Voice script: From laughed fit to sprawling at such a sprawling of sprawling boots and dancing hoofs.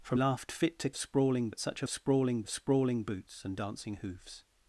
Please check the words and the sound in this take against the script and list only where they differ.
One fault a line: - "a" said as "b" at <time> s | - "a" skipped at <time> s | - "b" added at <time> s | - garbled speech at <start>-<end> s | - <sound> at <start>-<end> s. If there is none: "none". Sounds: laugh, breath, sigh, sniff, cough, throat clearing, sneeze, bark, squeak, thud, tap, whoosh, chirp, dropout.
none